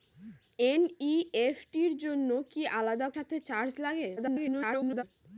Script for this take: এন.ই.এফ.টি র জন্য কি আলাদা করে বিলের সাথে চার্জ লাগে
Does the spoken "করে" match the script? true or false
false